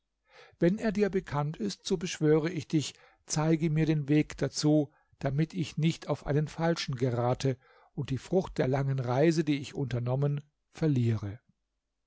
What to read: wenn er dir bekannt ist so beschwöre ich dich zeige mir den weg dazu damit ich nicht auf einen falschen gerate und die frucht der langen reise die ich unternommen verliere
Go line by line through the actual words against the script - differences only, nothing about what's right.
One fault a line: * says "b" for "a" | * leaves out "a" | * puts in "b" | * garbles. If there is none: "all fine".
all fine